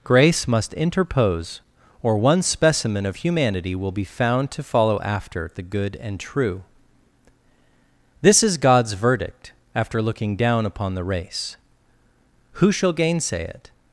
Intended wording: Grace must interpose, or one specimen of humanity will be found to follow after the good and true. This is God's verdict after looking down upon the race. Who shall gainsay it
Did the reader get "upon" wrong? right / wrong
right